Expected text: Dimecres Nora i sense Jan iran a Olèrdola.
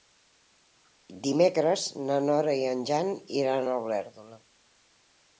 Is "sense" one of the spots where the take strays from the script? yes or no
yes